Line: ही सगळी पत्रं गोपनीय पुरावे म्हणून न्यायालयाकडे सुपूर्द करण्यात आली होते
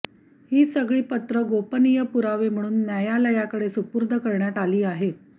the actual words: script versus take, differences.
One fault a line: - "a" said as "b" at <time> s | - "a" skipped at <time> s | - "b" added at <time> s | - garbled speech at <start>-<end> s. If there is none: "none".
- "होते" said as "आहेत" at 4.8 s